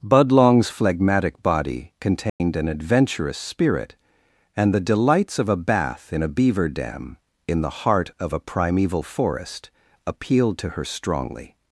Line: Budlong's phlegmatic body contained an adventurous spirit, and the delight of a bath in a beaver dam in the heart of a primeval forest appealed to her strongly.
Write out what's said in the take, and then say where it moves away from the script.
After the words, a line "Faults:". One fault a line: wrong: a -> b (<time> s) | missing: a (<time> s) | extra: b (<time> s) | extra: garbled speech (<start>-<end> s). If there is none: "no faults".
Budlong's phlegmatic body contained an adventurous spirit, and the delights of a bath in a beaver dam in the heart of a primeval forest appealed to her strongly.
Faults:
wrong: delight -> delights (4.8 s)